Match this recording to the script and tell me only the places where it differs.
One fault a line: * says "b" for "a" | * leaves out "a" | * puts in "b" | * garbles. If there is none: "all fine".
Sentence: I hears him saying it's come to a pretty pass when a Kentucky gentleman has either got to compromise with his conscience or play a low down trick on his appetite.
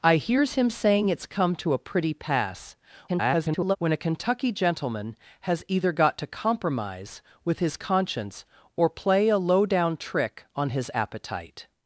* garbles